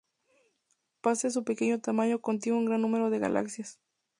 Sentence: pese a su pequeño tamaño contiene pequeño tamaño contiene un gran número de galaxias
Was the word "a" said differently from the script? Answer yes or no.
no